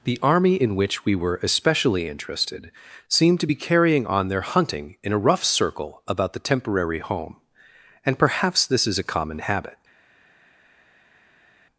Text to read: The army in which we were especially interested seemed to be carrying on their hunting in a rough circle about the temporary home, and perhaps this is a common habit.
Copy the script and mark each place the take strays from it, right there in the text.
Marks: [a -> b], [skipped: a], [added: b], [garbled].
The army in which we were especially interested seemed to be carrying on their hunting in a rough circle about the temporary home, and perhaps this is a common habit.